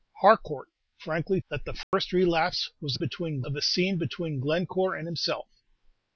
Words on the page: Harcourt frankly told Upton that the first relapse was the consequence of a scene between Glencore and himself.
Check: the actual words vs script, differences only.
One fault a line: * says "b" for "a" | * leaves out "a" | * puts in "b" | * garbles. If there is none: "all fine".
* leaves out "told Upton"
* says "between" for "consequence"